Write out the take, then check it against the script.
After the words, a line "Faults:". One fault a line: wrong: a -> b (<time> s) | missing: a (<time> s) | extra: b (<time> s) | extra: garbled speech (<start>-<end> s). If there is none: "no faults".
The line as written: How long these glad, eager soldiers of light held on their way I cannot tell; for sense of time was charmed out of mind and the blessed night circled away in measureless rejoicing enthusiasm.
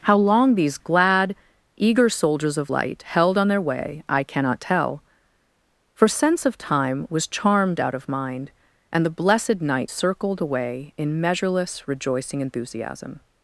How long these glad, eager soldiers of light held on their way I cannot tell; for sense of time was charmed out of mind and the blessed night circled away in measureless rejoicing enthusiasm.
Faults:
no faults